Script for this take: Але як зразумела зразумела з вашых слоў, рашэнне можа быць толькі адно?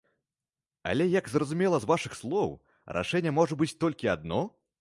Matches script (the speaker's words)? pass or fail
fail